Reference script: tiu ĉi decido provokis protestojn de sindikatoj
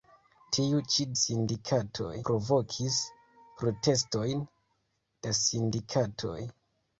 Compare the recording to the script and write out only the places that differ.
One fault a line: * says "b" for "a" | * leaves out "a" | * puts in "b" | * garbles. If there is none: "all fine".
* says "sindikatoj" for "decido"